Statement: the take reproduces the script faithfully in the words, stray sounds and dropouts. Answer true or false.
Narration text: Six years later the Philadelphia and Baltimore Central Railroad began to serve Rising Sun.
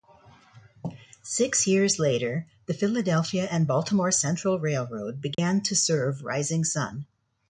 false